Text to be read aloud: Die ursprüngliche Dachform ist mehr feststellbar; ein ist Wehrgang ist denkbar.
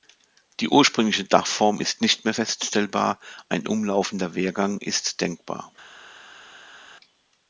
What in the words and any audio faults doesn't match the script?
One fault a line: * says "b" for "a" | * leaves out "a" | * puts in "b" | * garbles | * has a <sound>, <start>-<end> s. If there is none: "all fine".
* puts in "nicht"
* says "umlaufender" for "ist"